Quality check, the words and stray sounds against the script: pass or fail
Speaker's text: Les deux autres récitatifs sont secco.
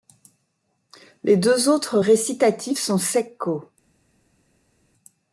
pass